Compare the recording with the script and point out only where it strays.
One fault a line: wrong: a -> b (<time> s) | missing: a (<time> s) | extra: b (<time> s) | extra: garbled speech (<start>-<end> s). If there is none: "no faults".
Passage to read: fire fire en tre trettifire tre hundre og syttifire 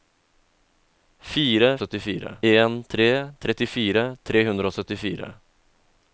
wrong: fire -> syttifire (1.8 s)